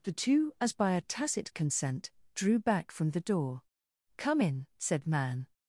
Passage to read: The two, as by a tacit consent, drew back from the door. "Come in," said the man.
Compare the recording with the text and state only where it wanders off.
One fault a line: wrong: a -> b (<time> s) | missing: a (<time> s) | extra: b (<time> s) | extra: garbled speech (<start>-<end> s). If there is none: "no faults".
missing: the (5.1 s)